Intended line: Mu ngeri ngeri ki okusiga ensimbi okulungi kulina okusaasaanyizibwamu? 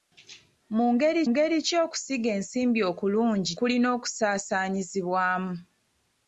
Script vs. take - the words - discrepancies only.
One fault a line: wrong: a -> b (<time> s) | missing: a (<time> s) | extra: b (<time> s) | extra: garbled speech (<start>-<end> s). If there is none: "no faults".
no faults